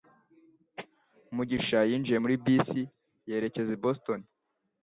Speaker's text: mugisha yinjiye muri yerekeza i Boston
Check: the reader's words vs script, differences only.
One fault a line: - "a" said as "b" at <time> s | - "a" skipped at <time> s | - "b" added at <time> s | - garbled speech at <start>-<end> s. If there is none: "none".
- "bisi" added at 2.5 s